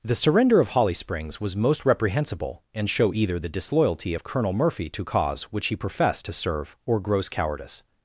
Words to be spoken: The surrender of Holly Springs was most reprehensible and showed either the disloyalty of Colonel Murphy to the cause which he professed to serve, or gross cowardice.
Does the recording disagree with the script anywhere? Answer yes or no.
yes